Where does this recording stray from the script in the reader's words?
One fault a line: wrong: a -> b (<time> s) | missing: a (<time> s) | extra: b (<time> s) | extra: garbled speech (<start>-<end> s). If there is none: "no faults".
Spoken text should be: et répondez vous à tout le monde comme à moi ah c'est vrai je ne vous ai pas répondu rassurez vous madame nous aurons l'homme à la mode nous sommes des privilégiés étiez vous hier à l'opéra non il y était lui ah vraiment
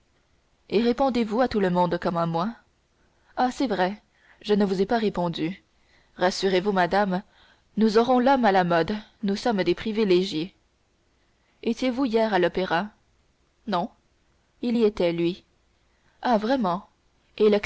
no faults